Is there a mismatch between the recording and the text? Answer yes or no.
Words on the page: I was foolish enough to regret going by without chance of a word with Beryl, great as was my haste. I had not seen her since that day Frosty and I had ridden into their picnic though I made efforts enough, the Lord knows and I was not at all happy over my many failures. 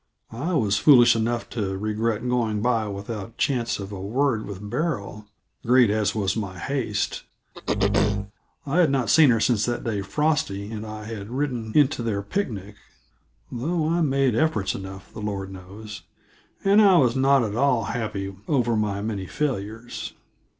no